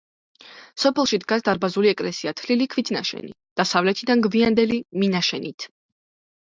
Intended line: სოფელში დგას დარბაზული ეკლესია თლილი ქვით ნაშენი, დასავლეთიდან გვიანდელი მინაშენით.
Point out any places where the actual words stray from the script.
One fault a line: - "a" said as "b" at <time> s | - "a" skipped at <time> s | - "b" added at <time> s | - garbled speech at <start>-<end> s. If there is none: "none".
none